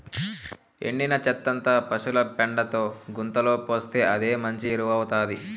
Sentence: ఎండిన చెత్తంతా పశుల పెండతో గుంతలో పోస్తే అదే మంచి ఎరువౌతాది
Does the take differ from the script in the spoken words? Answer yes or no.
no